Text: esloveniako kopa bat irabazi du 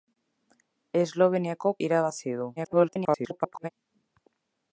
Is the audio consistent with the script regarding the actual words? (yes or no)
no